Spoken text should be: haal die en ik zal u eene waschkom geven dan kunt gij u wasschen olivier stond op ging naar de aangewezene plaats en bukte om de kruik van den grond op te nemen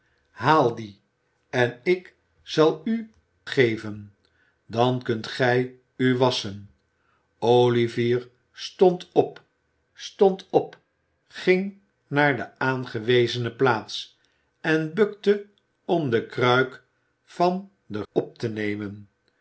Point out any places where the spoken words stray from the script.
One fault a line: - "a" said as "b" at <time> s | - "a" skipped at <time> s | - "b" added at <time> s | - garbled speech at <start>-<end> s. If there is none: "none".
- "eene waschkom" skipped at 3.1 s
- "stond op" added at 9.9 s
- "grond" skipped at 18.0 s